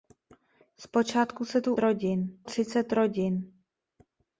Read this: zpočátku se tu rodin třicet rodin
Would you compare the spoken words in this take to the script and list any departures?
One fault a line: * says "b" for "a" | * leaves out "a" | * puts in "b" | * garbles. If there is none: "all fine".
all fine